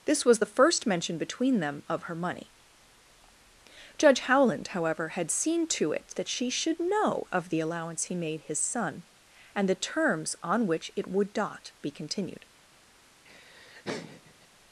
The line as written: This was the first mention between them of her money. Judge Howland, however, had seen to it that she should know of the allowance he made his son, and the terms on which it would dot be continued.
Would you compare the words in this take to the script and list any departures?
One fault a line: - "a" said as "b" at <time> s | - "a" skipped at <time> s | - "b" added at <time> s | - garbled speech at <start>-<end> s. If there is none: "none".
- "dot" said as "not" at 11.4 s